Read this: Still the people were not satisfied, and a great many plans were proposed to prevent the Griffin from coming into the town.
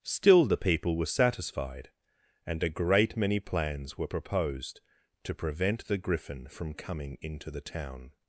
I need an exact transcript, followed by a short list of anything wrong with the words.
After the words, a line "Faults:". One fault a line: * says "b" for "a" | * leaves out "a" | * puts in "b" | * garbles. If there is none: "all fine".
Still the people were satisfied, and a great many plans were proposed to prevent the Griffin from coming into the town.
Faults:
* leaves out "not"